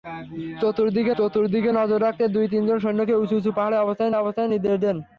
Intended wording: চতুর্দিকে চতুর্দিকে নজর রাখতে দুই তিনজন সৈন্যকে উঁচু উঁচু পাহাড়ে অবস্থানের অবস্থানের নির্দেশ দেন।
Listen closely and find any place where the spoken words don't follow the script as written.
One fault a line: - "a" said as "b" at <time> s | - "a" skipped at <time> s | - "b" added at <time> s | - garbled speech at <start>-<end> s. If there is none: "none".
none